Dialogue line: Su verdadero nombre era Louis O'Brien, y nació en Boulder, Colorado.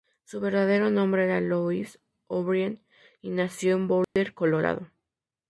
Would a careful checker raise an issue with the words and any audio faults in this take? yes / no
yes